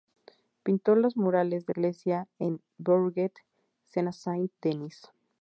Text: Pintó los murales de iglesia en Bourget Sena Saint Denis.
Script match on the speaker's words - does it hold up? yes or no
yes